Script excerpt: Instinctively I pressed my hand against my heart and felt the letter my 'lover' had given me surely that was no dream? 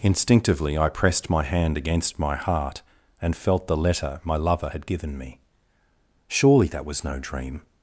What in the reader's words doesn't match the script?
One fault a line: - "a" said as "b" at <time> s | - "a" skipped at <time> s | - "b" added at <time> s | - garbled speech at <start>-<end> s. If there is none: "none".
none